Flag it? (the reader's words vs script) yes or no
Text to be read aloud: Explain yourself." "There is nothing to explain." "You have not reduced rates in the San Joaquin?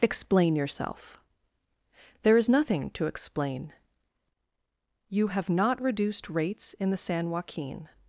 no